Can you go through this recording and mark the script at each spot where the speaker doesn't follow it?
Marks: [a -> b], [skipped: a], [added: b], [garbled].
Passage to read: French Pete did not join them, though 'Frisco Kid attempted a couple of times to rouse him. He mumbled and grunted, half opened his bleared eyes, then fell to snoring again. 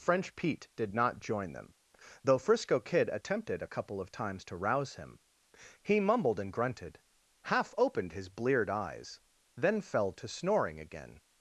French Pete did not join them, though 'Frisco Kid attempted a couple of times to rouse him. He mumbled and grunted, half opened his bleared eyes, then fell to snoring again.